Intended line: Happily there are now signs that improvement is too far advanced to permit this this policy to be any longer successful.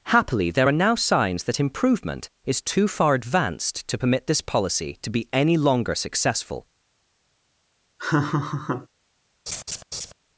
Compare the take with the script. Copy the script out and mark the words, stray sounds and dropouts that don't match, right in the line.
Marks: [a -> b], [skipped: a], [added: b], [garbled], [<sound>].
Happily there are now signs that improvement is too far advanced to permit this [skipped: this] policy to be any longer successful. [laugh] [laugh]